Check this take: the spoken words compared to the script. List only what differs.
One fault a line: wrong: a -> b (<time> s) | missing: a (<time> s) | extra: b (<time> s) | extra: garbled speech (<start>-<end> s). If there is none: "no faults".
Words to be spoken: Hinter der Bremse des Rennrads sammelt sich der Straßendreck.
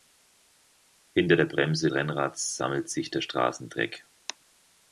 missing: des (1.9 s)